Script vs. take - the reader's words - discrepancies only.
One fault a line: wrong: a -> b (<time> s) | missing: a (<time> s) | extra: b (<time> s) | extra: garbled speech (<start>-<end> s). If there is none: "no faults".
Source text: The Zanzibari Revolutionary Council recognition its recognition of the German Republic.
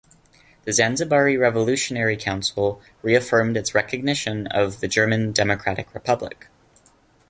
wrong: recognition -> reaffirmed (3.0 s)
extra: Democratic (5.3 s)